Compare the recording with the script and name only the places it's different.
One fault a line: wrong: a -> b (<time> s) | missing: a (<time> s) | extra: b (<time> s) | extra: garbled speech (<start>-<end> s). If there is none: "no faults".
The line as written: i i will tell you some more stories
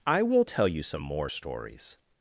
missing: i (0.2 s)